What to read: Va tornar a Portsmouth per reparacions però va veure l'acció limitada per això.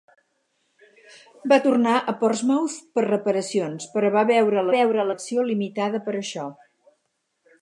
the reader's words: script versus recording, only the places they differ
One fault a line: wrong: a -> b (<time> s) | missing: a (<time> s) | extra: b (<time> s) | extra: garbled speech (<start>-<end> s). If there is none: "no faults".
extra: veure (4.8 s)